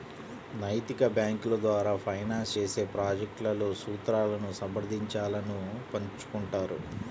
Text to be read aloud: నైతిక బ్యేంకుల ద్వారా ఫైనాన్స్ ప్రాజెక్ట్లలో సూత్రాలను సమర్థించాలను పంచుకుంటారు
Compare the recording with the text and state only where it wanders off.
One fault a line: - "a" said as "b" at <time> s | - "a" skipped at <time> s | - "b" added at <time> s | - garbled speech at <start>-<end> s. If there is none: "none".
- "చేసే" added at 2.5 s